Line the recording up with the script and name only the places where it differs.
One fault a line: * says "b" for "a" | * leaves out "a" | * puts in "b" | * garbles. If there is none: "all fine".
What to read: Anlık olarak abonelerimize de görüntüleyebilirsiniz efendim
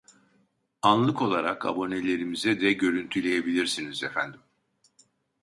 all fine